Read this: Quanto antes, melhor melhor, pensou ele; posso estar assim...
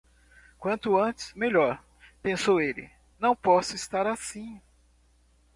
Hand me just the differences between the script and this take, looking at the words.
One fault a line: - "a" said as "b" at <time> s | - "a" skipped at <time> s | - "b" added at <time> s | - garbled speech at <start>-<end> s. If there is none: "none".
- "melhor" skipped at 1.9 s
- "não" added at 3.2 s